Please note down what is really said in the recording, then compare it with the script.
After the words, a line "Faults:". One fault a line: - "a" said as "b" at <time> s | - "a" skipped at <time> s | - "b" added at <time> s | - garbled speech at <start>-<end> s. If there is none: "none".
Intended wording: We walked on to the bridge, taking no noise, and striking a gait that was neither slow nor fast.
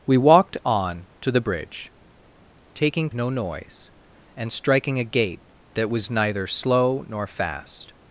We walked on to the bridge, taking no noise, and striking a gait that was neither slow nor fast.
Faults:
none